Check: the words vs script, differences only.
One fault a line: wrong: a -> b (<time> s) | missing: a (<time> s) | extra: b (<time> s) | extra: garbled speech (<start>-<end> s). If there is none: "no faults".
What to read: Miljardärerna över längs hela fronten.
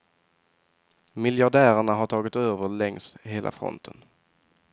extra: har tagit (1.9 s)